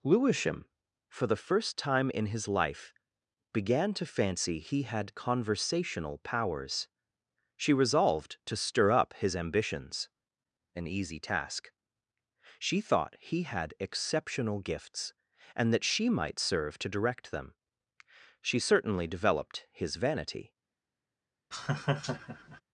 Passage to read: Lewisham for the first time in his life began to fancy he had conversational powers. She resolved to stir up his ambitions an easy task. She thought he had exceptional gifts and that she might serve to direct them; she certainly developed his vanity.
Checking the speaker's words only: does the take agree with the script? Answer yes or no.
yes